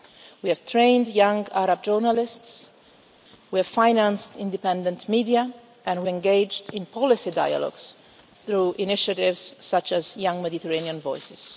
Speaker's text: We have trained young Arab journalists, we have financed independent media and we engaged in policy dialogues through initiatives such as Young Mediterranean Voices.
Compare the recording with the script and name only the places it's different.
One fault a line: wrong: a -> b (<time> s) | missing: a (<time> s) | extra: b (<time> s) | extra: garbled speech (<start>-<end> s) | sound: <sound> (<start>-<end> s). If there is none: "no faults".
no faults